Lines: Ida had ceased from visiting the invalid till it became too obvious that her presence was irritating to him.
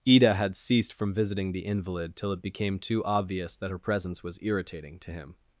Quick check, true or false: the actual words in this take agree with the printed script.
true